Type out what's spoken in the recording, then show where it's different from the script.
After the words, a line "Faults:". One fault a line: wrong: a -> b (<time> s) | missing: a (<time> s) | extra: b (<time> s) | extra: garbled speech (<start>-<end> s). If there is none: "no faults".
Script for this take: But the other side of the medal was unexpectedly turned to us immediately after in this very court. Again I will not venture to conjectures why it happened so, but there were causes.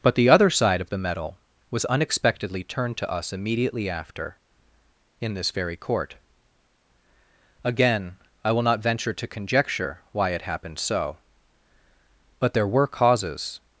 But the other side of the medal was unexpectedly turned to us immediately after in this very court. Again I will not venture to conjecture why it happened so, but there were causes.
Faults:
wrong: conjectures -> conjecture (9.3 s)